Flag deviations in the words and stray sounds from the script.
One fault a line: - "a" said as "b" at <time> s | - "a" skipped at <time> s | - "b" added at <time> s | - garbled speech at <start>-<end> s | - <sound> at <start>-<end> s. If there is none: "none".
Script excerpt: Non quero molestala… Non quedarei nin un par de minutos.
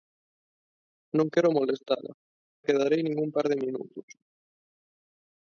- "Non" skipped at 2.1 s